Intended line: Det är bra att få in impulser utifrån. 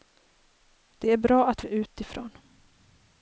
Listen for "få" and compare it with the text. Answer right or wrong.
wrong